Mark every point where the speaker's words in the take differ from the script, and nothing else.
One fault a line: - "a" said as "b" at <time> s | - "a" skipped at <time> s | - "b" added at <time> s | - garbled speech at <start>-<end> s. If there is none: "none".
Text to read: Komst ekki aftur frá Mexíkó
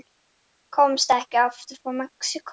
none